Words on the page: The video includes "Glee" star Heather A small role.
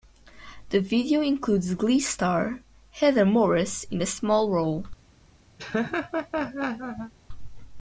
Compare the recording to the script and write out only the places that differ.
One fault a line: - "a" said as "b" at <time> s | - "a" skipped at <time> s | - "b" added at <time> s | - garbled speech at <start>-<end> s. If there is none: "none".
- "Morris in" added at 3.2 s